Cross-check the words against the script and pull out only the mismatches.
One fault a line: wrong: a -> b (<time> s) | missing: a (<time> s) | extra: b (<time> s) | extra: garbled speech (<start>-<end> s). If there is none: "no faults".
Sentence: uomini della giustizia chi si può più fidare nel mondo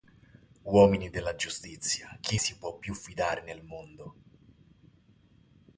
no faults